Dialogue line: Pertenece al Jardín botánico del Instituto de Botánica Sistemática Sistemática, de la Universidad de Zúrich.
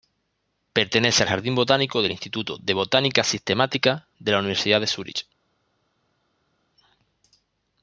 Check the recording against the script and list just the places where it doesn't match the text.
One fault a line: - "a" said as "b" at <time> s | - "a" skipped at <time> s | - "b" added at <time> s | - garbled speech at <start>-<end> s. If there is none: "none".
- "Sistemática" skipped at 4.1 s